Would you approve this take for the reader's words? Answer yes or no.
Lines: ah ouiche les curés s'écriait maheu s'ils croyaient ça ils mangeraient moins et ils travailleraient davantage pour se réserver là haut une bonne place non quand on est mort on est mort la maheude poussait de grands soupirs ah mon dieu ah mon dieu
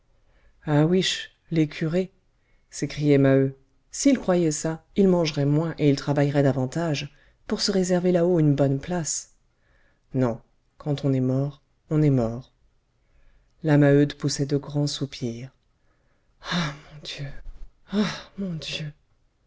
yes